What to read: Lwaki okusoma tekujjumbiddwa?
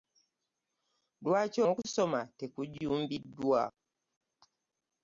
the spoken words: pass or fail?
pass